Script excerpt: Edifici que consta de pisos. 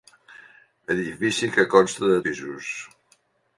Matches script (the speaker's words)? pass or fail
pass